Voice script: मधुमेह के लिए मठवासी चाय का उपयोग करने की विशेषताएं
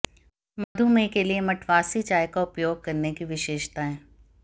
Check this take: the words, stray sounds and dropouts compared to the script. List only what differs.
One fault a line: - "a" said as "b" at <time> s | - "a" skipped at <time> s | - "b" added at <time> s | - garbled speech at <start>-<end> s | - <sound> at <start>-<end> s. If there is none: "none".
- dropout at 0.6-0.8 s